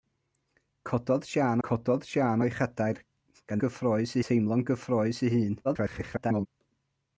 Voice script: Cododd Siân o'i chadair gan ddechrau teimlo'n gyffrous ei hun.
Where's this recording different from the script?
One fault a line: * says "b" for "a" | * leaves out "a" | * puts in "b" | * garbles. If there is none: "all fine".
* puts in "cododd Siân"
* says "gyffrous" for "ddechrau"
* garbles